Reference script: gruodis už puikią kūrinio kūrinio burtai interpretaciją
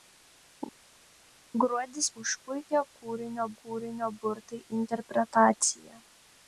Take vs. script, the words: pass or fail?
pass